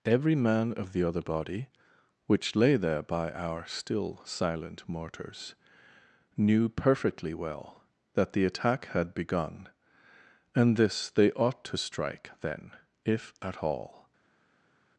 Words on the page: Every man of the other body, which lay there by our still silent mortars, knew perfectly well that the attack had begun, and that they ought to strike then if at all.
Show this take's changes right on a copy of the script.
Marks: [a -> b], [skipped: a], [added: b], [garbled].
Every man of the other body, which lay there by our still silent mortars, knew perfectly well that the attack had begun, and [that -> this] they ought to strike then if at all.